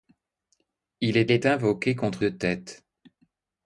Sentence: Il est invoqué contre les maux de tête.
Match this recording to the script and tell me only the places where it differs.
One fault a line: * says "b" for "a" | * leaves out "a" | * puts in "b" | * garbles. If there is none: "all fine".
* puts in "est"
* leaves out "les maux"